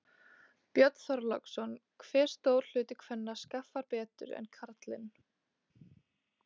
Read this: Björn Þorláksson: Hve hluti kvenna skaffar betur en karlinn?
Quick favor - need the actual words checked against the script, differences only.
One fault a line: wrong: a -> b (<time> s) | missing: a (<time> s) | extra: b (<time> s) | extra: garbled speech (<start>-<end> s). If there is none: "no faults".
extra: stór (2.3 s)